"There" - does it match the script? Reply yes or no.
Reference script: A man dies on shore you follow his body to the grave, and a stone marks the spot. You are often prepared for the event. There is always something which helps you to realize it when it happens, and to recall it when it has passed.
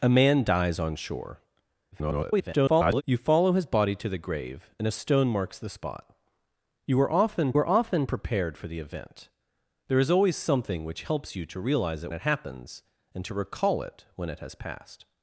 yes